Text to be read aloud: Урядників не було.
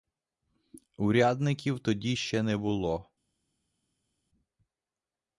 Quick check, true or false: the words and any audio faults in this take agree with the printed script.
false